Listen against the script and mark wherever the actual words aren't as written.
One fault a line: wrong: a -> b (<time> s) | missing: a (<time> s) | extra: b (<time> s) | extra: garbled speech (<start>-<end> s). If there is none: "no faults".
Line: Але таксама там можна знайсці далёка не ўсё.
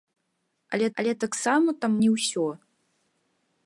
extra: але (1.0 s)
missing: можна знайсці далёка (1.9 s)